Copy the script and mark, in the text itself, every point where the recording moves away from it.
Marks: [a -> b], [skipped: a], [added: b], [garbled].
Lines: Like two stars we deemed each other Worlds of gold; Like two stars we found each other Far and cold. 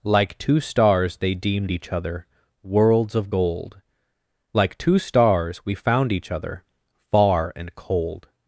Like two stars [we -> they] deemed each other Worlds of gold; Like two stars we found each other Far and cold.